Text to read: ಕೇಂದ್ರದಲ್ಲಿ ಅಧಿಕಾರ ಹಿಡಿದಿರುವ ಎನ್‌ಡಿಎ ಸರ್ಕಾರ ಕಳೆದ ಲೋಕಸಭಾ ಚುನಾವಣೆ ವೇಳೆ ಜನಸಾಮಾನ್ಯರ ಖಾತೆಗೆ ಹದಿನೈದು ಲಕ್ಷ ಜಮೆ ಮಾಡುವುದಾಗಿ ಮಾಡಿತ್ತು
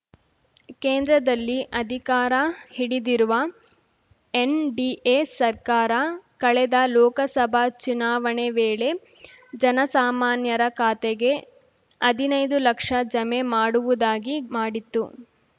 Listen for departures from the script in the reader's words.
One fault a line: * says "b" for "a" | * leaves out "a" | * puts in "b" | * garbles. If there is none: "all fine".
all fine